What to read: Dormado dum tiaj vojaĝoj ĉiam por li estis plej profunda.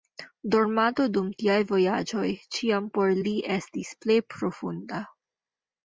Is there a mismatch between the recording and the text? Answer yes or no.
no